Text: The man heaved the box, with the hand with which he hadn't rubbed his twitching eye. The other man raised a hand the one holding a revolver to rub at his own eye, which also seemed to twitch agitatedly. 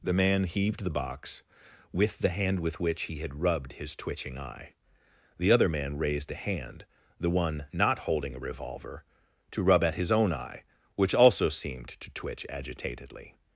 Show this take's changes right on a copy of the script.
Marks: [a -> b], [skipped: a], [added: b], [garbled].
The man heaved the box, with the hand with which he [hadn't -> had] rubbed his twitching eye. The other man raised a hand the one [added: not] holding a revolver to rub at his own eye, which also seemed to twitch agitatedly.